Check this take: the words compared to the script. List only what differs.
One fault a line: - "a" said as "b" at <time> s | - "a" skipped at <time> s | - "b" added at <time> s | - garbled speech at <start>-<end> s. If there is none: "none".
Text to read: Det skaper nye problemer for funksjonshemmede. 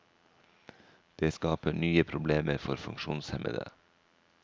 none